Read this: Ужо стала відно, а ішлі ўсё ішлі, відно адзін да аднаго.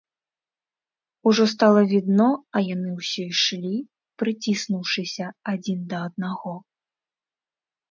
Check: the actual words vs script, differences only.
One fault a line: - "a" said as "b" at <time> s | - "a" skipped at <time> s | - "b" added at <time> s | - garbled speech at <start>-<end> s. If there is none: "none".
- "ішлі" said as "яны" at 2.8 s
- "відно" said as "прыціснуўшыся" at 4.2 s